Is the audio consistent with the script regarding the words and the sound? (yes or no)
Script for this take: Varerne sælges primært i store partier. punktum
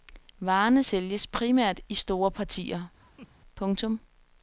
no